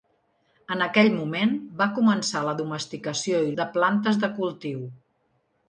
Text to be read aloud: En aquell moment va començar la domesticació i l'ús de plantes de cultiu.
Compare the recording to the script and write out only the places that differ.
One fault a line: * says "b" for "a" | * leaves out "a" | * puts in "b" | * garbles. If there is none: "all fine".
* leaves out "l'ús"